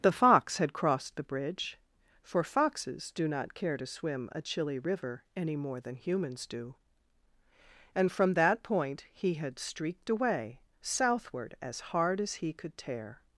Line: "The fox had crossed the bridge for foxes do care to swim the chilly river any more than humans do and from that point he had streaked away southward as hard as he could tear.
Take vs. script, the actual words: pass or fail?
fail